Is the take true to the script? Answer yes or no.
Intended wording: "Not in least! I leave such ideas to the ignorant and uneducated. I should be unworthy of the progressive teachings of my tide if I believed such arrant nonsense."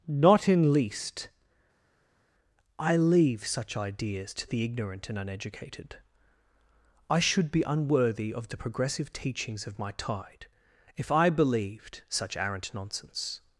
yes